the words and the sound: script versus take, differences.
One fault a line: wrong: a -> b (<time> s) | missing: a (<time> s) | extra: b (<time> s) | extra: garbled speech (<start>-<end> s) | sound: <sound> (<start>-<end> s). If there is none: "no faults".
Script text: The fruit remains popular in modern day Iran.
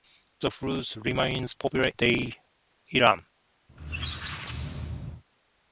missing: in modern (1.9 s)
sound: squeak (3.7-5.2 s)